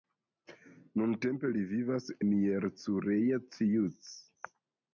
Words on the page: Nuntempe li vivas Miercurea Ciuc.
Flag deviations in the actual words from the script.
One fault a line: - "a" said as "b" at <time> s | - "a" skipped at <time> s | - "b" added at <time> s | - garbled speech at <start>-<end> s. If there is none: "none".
none